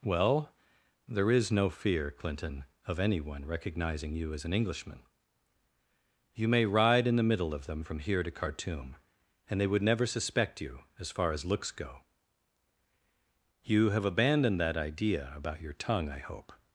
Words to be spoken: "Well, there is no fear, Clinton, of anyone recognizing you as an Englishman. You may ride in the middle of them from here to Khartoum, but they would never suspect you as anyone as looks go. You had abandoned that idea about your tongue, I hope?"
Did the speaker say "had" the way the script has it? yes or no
no